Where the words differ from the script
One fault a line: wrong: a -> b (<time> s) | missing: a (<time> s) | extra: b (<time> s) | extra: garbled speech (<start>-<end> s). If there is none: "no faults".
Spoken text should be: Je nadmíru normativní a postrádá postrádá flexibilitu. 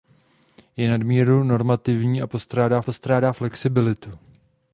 no faults